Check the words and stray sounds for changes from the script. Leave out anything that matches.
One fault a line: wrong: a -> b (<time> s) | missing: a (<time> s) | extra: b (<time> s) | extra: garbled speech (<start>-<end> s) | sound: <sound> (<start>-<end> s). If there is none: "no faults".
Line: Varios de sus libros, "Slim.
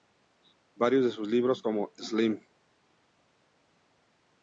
extra: como (1.6 s)